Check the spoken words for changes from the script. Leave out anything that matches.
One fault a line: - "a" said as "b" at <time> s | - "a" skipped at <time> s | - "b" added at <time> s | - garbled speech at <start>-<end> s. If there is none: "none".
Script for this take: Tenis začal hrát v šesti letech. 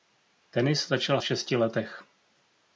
- "hrát" skipped at 1.2 s